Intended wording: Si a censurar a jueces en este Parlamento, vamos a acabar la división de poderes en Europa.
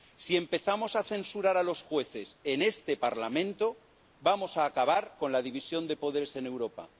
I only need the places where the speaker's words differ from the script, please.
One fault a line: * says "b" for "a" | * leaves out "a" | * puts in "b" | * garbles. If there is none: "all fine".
* puts in "empezamos"
* puts in "los"
* puts in "con"